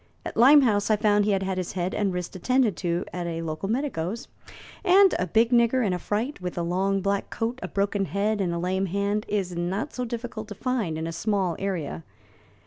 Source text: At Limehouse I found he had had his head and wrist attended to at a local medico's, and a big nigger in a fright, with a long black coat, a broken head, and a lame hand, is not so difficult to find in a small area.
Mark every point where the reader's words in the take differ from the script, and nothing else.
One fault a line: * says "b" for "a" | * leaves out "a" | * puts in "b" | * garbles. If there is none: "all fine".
all fine